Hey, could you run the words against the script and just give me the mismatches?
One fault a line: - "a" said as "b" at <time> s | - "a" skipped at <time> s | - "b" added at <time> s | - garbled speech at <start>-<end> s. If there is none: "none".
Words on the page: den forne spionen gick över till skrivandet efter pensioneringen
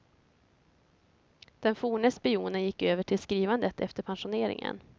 none